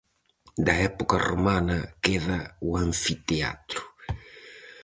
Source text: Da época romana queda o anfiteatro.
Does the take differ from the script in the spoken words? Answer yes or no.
no